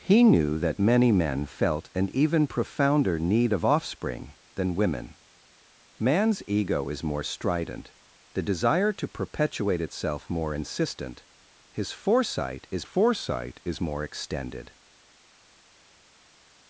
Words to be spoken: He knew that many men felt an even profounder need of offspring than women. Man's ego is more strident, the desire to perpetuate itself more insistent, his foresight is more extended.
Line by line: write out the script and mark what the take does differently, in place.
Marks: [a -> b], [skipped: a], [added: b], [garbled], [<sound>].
He knew that many men felt an even profounder need of offspring than women. Man's ego is more strident, the desire to perpetuate itself more insistent, his foresight is [added: foresight is] more extended.